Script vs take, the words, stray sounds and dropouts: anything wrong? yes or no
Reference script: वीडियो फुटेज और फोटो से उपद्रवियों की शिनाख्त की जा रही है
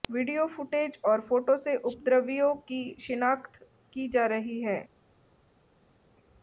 no